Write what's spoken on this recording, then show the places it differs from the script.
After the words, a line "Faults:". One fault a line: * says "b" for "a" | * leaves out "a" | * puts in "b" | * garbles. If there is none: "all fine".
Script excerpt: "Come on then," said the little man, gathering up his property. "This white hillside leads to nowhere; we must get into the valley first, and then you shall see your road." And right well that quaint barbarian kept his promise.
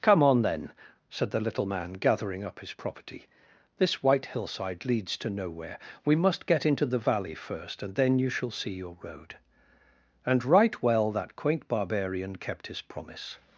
"Come on then," said the little man, gathering up his property. "This white hillside leads to nowhere; we must get into the valley first, and then you shall see your road." And right well that quaint barbarian kept his promise.
Faults:
all fine